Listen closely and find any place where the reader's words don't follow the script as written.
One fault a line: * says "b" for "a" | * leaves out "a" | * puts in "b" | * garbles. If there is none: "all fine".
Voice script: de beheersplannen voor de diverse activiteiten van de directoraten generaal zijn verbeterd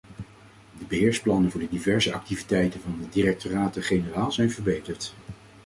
all fine